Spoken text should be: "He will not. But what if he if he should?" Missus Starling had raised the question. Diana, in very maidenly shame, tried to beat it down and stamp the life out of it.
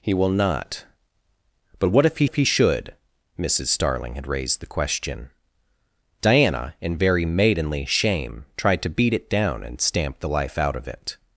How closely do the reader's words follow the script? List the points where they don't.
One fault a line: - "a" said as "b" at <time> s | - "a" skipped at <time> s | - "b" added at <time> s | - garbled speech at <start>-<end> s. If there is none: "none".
none